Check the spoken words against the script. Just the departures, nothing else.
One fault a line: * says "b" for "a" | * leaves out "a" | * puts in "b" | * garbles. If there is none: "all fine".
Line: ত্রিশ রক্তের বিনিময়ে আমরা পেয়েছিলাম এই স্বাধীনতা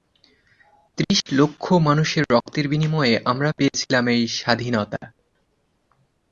* puts in "লক্ষ মানুষের"